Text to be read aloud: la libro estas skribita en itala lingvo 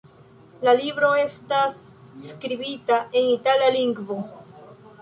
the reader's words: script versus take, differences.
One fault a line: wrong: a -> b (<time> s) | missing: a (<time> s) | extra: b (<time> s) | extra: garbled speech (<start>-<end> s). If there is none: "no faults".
no faults